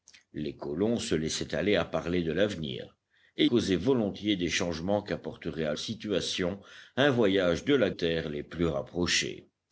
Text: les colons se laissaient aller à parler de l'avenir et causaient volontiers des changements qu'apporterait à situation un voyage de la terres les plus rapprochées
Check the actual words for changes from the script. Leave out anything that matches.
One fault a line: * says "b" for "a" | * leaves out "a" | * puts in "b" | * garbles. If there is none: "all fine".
all fine